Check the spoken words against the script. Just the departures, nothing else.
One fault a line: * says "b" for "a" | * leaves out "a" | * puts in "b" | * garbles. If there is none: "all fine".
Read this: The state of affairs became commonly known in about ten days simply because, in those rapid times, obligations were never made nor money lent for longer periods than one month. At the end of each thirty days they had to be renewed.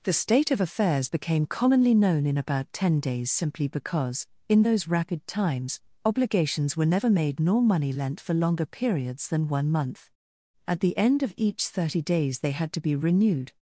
all fine